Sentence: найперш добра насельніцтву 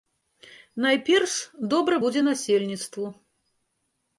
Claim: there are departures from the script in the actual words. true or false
true